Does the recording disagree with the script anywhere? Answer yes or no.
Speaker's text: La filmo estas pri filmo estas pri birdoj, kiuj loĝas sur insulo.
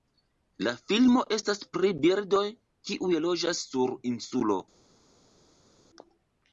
yes